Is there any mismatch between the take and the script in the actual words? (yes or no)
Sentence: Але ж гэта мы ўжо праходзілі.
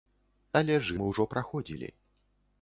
yes